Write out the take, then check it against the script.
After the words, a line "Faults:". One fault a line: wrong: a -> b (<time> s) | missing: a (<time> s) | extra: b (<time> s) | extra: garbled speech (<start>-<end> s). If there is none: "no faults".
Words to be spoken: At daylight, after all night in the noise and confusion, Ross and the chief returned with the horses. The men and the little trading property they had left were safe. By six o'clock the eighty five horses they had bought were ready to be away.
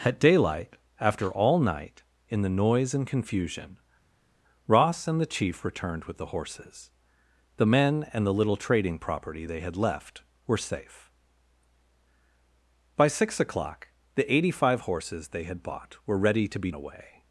At daylight, after all night in the noise and confusion, Ross and the chief returned with the horses. The men and the little trading property they had left were safe. By six o'clock the eighty five horses they had bought were ready to be away.
Faults:
no faults